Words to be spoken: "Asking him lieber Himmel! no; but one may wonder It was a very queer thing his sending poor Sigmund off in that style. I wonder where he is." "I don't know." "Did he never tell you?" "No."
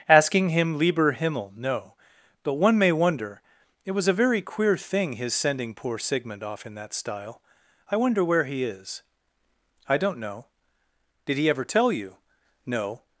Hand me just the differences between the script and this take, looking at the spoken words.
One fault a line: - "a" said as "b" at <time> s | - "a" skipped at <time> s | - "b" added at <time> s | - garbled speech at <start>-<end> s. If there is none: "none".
- "never" said as "ever" at 11.5 s